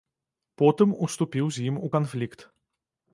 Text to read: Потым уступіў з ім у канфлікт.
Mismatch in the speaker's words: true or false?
false